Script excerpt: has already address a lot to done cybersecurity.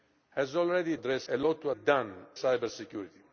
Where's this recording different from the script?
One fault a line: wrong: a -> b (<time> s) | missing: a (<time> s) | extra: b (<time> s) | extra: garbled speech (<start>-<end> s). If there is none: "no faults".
no faults